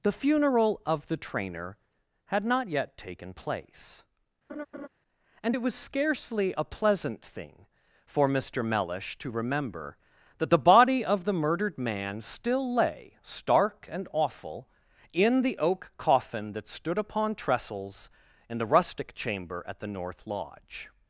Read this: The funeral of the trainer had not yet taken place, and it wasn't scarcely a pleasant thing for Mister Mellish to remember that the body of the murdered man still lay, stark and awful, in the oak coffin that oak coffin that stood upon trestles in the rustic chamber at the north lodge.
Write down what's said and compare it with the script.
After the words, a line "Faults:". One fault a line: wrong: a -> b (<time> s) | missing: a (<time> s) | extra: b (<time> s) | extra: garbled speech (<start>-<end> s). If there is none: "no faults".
The funeral of the trainer had not yet taken place, and it was scarcely a pleasant thing for Mister Mellish to remember that the body of the murdered man still lay, stark and awful, in the oak coffin that stood upon trestles in the rustic chamber at the north lodge.
Faults:
wrong: wasn't -> was (5.6 s)
missing: oak coffin that (16.7 s)